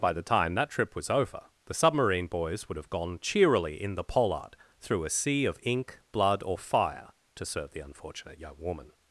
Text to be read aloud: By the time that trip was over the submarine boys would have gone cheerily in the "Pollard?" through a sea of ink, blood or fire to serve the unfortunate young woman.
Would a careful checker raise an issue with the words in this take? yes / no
no